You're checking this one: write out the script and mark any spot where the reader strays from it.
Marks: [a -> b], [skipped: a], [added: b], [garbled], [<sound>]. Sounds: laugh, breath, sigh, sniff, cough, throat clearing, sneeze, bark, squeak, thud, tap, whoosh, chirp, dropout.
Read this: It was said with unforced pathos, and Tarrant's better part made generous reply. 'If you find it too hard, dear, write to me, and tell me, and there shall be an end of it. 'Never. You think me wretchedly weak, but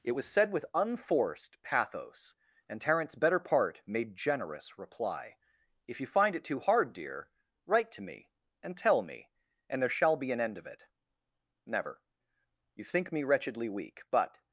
It was said with unforced pathos, and Tarrant's better part made generous reply. 'If you find it too hard, dear, write to me, and tell me, and there shall be an end of it. 'Never. You think me wretchedly weak, but